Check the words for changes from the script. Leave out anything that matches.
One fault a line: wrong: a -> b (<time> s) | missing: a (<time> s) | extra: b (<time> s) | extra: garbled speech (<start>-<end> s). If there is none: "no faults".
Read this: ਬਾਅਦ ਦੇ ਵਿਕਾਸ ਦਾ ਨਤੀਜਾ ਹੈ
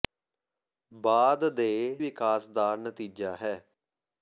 no faults